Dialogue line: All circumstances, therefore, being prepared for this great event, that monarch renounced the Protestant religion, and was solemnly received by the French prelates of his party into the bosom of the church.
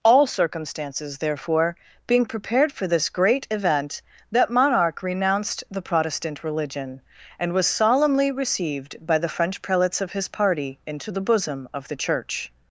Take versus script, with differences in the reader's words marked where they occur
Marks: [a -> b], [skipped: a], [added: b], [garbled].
All circumstances, therefore, being prepared for this great event, that monarch renounced the Protestant religion, and was solemnly received by the French prelates of his party into the bosom of the church.